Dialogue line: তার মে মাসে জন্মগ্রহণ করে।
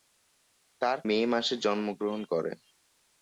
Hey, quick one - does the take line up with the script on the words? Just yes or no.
yes